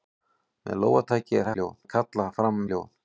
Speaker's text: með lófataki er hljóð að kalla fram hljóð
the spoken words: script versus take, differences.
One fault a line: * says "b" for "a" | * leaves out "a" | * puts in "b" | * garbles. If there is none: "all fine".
all fine